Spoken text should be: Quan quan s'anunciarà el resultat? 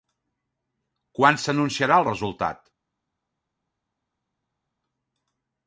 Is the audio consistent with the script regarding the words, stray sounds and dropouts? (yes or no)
no